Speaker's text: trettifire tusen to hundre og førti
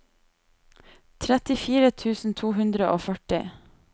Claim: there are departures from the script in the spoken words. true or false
false